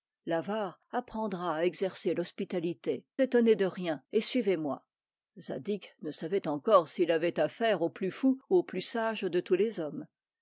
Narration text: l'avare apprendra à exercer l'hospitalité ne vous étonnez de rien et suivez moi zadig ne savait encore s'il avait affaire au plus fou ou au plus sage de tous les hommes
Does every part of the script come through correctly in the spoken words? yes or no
no